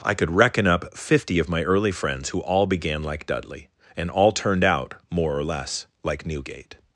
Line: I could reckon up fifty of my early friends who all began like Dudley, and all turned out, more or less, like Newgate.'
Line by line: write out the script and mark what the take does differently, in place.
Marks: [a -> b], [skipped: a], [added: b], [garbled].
I could reckon up fifty of my early friends who all began like Dudley, and all turned out, more or less, like Newgate.'